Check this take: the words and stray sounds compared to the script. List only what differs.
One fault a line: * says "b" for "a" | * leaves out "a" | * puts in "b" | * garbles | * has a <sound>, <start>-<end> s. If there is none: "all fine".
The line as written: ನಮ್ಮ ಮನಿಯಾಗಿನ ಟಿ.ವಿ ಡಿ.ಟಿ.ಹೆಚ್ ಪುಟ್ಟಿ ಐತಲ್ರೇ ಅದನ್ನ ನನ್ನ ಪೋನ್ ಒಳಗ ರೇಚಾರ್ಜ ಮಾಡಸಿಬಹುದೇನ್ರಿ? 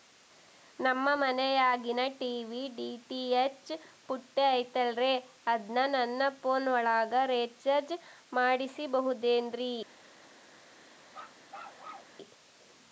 * has a bark, 11.1-12.2 s